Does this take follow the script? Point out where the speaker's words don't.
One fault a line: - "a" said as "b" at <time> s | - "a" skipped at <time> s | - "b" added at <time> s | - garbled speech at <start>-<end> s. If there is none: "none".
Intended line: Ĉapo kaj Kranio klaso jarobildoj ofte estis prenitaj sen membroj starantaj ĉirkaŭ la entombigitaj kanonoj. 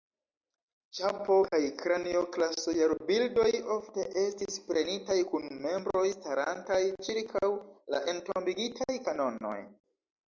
- "sen" said as "kun" at 5.3 s